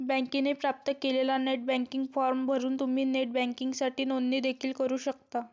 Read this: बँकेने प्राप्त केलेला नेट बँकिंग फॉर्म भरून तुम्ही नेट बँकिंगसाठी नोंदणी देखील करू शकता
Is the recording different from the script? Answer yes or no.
no